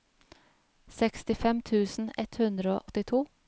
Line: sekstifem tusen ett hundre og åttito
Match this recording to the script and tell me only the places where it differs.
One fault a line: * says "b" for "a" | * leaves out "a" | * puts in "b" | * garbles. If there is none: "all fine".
* leaves out "og"